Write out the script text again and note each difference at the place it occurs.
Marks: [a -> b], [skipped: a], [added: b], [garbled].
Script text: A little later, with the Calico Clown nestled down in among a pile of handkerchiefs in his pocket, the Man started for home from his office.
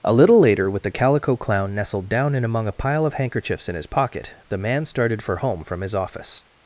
A little later, with the Calico Clown nestled down in among a pile of handkerchiefs in his pocket, the Man started for home from his office.